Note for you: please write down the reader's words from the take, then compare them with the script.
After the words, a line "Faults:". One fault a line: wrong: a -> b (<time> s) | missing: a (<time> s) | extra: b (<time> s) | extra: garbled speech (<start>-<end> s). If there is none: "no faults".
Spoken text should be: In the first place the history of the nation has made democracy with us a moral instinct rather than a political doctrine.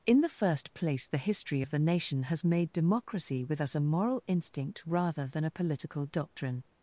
In the first place the history of the nation has made democracy with us a moral instinct rather than a political doctrine.
Faults:
no faults